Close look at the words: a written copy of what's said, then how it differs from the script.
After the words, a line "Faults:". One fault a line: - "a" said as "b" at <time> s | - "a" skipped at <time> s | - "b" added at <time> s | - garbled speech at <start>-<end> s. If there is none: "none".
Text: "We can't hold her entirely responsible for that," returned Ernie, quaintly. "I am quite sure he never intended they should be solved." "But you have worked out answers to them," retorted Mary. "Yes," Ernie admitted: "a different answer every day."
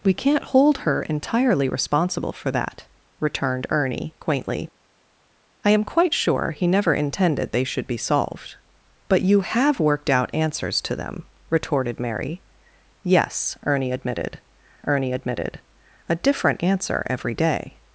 "We can't hold her entirely responsible for that," returned Ernie, quaintly. "I am quite sure he never intended they should be solved." "But you have worked out answers to them," retorted Mary. "Yes," Ernie admitted Ernie admitted: "a different answer every day."
Faults:
- "Ernie admitted" added at 14.8 s